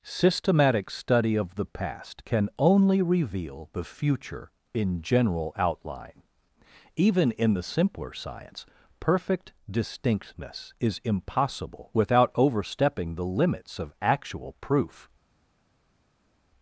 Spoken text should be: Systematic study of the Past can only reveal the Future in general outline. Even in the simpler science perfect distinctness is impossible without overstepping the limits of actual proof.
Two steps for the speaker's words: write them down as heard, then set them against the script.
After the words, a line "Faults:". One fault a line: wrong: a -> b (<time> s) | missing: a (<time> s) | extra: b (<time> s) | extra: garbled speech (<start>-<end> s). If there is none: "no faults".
Systematic study of the Past can only reveal the Future in general outline. Even in the simpler science perfect distinctness is impossible without overstepping the limits of actual proof.
Faults:
no faults